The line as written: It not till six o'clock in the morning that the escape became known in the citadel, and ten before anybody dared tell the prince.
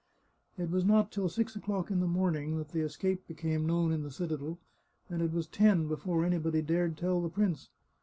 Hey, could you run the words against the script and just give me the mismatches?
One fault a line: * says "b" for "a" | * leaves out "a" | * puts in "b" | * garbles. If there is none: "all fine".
* puts in "was"
* puts in "it was"